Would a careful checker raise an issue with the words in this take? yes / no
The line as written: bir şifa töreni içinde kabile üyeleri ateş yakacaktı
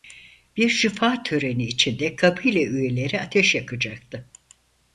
no